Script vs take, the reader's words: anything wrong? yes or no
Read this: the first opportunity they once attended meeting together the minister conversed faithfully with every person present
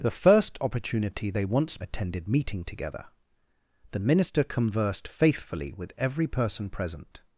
no